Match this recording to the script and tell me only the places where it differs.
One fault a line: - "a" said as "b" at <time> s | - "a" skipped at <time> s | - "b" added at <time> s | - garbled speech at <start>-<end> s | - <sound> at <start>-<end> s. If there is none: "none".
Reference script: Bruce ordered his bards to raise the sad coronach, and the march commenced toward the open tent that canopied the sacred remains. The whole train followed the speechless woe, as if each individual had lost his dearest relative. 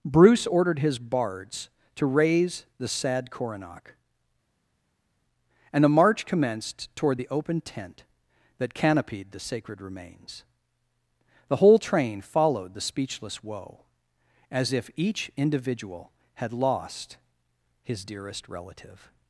none